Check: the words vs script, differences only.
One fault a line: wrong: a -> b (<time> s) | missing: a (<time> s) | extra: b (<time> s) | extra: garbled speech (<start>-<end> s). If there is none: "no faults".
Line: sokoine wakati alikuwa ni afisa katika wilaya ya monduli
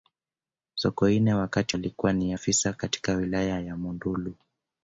no faults